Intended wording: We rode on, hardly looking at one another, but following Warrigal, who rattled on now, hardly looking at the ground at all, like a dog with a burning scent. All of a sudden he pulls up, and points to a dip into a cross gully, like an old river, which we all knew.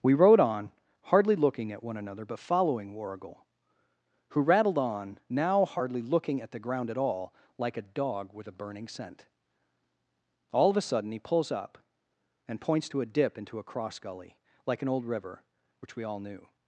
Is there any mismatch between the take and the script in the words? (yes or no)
no